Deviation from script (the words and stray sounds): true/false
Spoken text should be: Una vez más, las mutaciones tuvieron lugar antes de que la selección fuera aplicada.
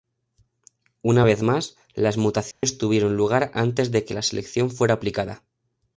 true